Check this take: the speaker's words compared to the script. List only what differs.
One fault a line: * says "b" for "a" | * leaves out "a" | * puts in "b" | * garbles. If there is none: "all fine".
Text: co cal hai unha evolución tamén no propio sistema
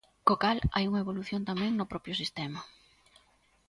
all fine